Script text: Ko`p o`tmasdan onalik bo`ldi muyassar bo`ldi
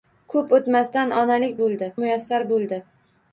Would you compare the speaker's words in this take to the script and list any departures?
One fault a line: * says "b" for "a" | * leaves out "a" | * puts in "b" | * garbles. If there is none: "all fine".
all fine